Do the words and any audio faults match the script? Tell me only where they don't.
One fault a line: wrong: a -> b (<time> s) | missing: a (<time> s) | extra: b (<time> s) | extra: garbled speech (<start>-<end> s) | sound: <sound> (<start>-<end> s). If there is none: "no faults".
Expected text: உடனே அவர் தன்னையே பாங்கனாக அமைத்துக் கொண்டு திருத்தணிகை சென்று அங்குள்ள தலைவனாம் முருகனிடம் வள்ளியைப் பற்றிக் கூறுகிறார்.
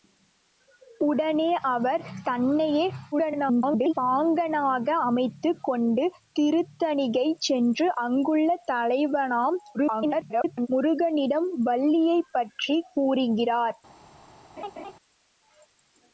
extra: garbled speech (3.1-3.9 s)
extra: garbled speech (9.7-10.7 s)
sound: laugh (14.6-14.9 s)